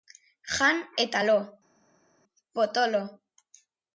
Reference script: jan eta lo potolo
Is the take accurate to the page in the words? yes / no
yes